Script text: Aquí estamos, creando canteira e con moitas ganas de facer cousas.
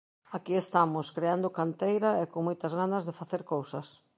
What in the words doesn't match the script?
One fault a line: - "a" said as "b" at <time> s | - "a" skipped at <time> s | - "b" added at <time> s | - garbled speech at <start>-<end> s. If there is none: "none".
none